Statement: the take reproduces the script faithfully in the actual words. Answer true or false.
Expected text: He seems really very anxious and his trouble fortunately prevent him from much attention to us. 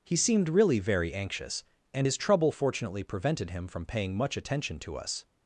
false